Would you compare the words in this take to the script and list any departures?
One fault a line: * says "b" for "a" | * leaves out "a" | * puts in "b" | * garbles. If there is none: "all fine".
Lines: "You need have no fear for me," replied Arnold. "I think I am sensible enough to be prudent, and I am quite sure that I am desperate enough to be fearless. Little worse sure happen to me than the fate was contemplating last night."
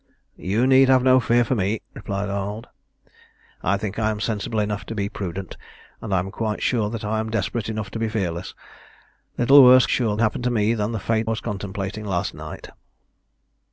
all fine